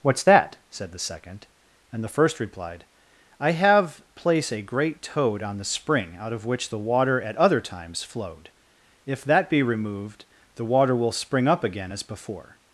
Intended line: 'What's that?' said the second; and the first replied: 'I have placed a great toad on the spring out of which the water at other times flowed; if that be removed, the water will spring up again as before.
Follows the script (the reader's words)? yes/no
no